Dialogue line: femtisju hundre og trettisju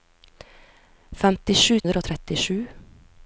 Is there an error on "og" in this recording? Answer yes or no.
no